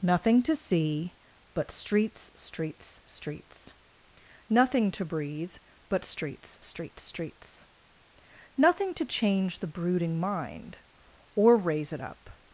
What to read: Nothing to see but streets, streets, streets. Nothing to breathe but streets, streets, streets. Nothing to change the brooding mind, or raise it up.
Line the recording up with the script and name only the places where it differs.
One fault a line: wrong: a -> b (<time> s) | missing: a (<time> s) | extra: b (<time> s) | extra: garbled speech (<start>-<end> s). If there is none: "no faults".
no faults